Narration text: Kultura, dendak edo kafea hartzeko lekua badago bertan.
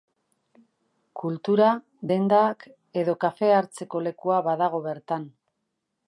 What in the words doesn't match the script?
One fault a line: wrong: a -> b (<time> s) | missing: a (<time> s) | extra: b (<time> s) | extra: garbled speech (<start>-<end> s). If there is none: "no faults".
no faults